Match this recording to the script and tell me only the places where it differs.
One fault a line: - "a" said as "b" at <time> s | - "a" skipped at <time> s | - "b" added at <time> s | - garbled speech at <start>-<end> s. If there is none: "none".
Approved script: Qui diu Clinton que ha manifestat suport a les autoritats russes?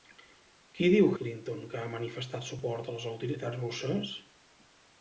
none